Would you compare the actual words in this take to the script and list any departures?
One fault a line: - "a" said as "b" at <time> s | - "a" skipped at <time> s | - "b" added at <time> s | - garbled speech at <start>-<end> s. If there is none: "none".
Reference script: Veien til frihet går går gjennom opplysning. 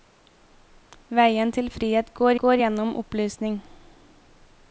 none